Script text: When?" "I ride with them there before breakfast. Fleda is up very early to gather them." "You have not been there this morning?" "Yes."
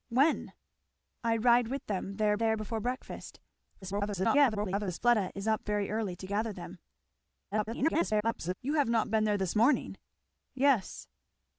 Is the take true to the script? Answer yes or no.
no